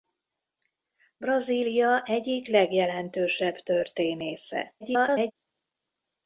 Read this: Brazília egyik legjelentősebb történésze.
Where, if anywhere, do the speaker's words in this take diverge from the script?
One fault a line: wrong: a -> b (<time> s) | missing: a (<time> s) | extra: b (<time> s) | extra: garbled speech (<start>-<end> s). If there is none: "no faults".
extra: garbled speech (4.8-5.3 s)